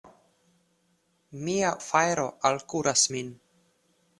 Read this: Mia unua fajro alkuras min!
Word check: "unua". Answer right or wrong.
wrong